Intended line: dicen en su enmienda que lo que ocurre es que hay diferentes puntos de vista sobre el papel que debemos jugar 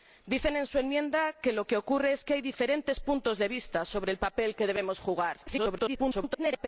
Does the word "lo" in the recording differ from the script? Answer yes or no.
no